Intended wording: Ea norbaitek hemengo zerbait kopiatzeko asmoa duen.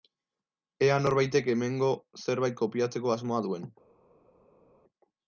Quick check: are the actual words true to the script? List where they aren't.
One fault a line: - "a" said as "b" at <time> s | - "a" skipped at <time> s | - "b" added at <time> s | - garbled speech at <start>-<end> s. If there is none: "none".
none